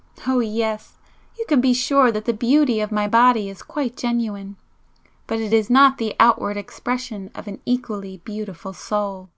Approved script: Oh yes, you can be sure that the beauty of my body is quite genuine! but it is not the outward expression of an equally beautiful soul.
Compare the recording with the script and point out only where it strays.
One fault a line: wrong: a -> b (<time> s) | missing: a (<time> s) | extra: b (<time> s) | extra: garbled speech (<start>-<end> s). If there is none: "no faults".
no faults